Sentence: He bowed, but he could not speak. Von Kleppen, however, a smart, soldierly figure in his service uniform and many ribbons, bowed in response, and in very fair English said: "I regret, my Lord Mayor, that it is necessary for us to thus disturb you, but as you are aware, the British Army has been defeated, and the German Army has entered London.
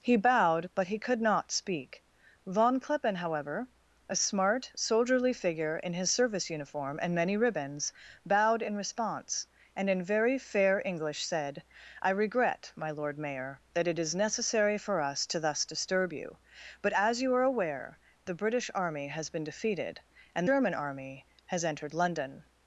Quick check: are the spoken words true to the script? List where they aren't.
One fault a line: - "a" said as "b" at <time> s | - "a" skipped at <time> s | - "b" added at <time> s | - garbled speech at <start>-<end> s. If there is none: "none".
- "the" skipped at 20.5 s